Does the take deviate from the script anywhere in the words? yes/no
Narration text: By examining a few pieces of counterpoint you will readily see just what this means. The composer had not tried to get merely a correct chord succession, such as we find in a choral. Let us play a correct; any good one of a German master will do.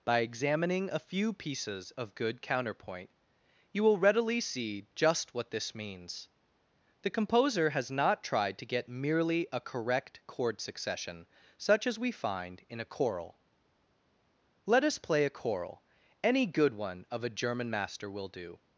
yes